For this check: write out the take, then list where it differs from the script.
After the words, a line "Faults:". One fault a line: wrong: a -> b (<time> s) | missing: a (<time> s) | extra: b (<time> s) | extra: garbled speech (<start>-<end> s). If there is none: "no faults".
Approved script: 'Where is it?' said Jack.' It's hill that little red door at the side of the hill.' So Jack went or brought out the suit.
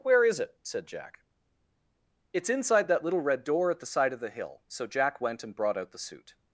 'Where is it?' said Jack.' It's inside that little red door at the side of the hill.' So Jack went and brought out the suit.
Faults:
wrong: hill -> inside (2.5 s)
wrong: or -> and (5.4 s)